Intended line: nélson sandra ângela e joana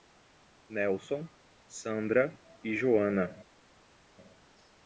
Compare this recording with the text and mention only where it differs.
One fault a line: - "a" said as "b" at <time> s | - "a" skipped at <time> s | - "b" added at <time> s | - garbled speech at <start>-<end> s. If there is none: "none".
- "ângela" skipped at 2.4 s